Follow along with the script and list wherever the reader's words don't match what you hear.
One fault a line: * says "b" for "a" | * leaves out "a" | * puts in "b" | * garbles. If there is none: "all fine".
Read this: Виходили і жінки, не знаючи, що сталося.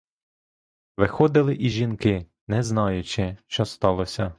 all fine